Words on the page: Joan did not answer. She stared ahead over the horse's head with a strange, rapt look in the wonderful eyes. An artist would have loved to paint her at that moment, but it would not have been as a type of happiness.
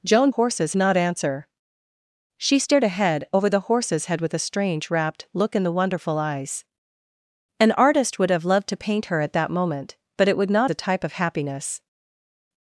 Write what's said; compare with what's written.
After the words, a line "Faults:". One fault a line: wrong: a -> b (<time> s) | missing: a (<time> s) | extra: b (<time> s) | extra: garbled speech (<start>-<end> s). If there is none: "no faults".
Joan horse's not answer. She stared ahead over the horse's head with a strange, rapt look in the wonderful eyes. An artist would have loved to paint her at that moment, but it would not a type of happiness.
Faults:
wrong: did -> horse's (0.3 s)
missing: have been as (10.7 s)